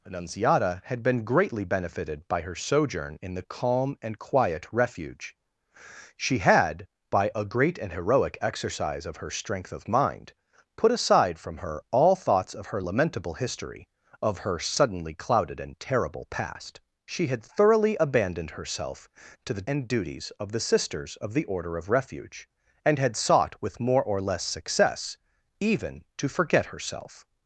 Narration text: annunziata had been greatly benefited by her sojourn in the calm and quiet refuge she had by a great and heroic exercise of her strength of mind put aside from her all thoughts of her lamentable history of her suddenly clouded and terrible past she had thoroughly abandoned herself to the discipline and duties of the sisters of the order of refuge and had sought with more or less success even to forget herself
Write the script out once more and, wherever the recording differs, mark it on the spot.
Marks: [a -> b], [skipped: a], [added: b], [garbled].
annunziata had been greatly benefited by her sojourn in the calm and quiet refuge she had by a great and heroic exercise of her strength of mind put aside from her all thoughts of her lamentable history of her suddenly clouded and terrible past she had thoroughly abandoned herself to the [skipped: discipline] and duties of the sisters of the order of refuge and had sought with more or less success even to forget herself